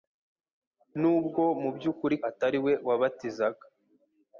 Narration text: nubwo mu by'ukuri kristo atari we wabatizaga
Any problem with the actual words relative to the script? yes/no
yes